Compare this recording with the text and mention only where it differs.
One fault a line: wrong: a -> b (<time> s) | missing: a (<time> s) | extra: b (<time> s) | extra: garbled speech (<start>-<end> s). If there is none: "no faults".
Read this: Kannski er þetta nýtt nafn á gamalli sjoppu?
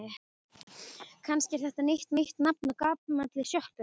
extra: nýtt (2.2 s)